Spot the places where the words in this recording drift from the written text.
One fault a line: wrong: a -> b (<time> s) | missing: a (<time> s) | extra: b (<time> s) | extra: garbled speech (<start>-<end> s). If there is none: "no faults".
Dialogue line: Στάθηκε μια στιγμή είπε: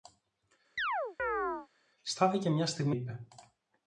no faults